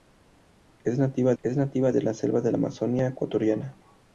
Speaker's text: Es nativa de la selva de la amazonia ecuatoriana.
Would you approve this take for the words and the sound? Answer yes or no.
no